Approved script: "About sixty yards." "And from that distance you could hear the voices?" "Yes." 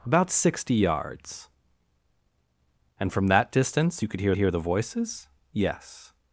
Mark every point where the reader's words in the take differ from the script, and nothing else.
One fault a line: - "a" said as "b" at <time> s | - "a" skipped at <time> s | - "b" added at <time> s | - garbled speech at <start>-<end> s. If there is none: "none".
- "hear" added at 4.4 s